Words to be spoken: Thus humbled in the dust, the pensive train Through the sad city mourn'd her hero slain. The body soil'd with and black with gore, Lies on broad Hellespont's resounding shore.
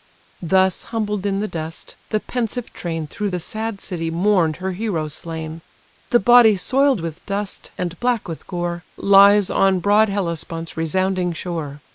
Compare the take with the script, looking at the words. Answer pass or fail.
fail